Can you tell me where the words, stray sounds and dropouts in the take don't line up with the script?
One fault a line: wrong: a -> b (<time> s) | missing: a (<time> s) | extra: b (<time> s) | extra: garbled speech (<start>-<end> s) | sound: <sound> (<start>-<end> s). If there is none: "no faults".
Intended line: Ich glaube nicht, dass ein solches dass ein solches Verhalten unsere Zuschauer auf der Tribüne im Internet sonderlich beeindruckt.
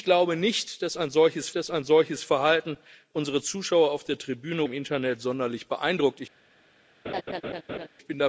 sound: laugh (7.0-7.9 s)